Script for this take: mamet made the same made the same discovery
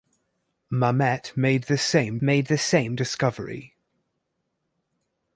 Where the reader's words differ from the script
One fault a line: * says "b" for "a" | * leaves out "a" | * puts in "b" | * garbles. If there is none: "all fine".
all fine